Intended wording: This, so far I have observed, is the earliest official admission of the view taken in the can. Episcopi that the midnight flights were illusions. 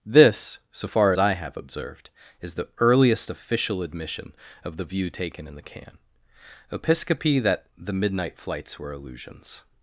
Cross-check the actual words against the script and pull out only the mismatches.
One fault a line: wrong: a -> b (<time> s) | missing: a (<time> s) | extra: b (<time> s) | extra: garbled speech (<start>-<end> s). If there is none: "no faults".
no faults